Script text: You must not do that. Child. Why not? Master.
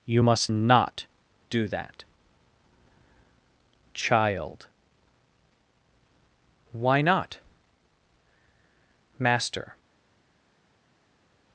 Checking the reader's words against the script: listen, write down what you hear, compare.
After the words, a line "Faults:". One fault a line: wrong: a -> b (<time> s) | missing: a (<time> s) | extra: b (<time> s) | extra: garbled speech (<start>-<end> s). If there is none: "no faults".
You must not do that. Child. Why not? Master.
Faults:
no faults